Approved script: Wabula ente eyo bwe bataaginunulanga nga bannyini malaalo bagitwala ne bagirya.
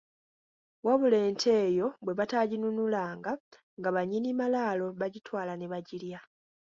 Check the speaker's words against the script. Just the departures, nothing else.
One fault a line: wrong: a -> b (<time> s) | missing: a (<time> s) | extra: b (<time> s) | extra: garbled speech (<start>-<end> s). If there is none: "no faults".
no faults